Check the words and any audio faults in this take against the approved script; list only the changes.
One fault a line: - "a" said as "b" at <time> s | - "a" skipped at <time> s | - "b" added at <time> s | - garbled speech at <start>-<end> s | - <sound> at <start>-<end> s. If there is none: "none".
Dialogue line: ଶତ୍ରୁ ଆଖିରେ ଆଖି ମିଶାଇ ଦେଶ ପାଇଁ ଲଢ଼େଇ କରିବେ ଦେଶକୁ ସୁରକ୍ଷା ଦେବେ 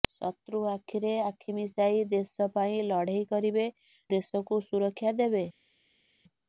none